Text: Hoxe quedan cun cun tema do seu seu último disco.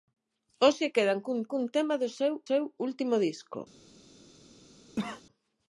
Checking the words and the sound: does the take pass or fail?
fail